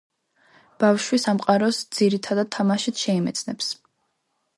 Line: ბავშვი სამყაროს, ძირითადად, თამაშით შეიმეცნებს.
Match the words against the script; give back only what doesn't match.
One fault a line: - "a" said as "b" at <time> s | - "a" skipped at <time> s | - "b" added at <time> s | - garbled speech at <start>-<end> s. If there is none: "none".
none